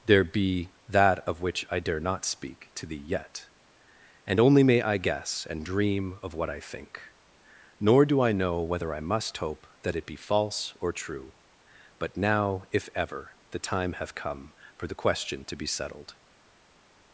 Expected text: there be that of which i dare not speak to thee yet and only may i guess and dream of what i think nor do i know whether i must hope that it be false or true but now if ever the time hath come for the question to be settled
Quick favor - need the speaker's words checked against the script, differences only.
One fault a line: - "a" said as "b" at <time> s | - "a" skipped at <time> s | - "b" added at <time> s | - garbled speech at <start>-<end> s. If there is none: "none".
none